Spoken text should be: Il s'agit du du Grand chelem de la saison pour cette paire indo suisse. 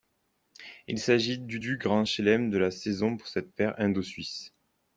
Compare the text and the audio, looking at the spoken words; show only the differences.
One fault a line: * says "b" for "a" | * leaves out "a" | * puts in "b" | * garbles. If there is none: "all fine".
all fine